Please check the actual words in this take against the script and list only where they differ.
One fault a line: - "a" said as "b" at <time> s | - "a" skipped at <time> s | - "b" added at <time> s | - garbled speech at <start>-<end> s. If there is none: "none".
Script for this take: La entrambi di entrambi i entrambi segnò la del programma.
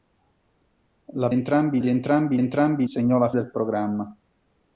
none